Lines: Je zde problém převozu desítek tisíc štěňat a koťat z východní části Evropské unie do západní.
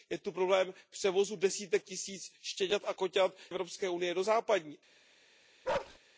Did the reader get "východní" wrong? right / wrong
wrong